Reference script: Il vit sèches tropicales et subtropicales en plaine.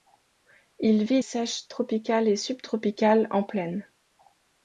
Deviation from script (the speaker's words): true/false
false